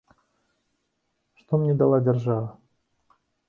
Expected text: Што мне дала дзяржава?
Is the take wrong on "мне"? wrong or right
right